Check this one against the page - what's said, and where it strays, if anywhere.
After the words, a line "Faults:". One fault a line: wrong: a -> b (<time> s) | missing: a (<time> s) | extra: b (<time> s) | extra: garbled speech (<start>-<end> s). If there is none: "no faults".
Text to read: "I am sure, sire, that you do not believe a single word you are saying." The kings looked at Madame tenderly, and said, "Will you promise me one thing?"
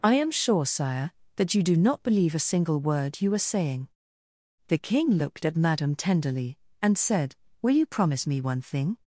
"I am sure, sire, that you do not believe a single word you are saying." The king looked at Madame tenderly, and said, "Will you promise me one thing?"
Faults:
wrong: kings -> king (4.8 s)